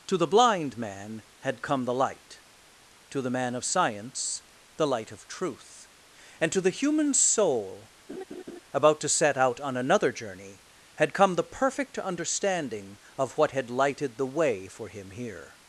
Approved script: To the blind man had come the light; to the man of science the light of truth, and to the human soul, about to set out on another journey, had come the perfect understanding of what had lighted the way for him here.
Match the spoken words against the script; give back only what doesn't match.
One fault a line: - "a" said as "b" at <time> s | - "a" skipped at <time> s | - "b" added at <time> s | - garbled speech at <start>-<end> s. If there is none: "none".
none